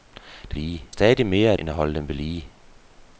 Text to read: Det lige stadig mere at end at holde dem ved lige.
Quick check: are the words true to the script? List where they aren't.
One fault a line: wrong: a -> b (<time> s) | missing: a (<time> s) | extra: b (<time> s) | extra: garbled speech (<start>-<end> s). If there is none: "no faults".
no faults